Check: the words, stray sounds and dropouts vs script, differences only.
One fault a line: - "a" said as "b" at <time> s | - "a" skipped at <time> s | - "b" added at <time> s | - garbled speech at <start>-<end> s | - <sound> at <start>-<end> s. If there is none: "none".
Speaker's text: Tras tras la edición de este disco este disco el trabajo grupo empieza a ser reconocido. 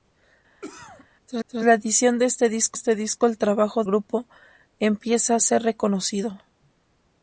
- cough at 0.6-1.1 s